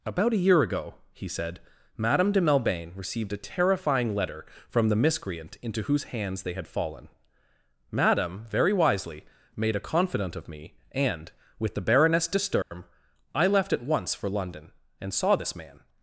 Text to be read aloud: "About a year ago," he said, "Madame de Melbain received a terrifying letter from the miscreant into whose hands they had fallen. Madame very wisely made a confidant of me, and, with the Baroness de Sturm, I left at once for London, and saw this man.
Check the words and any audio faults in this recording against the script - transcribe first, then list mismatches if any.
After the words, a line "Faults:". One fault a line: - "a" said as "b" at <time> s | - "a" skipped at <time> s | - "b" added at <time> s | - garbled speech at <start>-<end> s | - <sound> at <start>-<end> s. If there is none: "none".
"About a year ago," he said, "Madame de Melbain received a terrifying letter from the miscreant into whose hands they had fallen. Madame very wisely made a confidant of me, and, with the Baroness de Sturm, I left at once for London, and saw this man.
Faults:
- dropout at 12.6-12.7 s